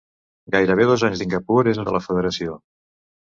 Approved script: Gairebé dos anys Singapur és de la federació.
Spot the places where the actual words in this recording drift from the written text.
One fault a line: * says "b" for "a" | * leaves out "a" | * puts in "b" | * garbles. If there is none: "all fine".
all fine